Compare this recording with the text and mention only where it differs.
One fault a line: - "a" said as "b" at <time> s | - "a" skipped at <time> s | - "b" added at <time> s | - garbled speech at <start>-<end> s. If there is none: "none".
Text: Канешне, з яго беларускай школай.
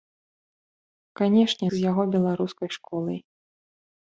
none